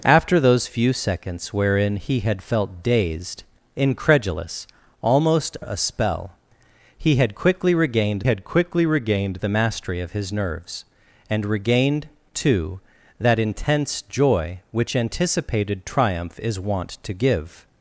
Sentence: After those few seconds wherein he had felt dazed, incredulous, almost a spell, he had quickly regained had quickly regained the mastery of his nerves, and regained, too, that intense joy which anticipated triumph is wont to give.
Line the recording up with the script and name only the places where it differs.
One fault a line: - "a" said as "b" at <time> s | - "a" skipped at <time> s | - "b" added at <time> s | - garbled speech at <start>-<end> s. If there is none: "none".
none